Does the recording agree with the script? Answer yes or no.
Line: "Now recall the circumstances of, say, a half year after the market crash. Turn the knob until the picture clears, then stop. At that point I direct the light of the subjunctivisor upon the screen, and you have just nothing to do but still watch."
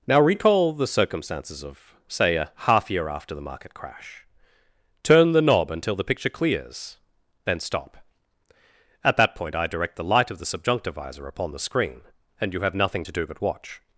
no